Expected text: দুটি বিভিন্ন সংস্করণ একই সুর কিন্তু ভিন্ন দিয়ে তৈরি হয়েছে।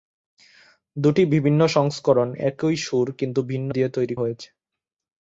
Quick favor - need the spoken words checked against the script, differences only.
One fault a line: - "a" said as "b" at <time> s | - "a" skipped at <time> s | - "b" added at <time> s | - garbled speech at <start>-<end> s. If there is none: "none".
none